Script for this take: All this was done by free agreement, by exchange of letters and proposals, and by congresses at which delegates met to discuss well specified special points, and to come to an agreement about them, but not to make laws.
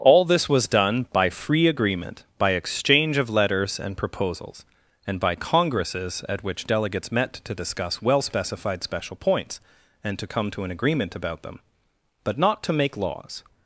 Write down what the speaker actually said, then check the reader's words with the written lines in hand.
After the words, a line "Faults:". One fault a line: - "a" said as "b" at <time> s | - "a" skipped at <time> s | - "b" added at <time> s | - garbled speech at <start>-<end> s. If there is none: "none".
All this was done by free agreement, by exchange of letters and proposals, and by congresses at which delegates met to discuss well specified special points, and to come to an agreement about them, but not to make laws.
Faults:
none